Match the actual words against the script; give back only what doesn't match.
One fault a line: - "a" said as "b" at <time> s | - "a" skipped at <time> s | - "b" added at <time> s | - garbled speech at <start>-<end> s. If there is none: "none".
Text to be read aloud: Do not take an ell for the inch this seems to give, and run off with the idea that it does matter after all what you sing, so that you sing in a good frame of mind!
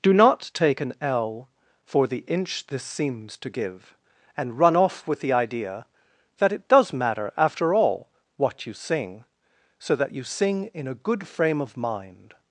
none